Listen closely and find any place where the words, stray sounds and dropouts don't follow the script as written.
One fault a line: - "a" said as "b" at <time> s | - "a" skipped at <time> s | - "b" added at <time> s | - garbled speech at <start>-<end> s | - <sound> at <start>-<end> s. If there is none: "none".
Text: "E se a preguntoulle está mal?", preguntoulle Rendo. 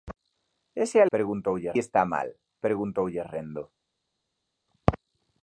none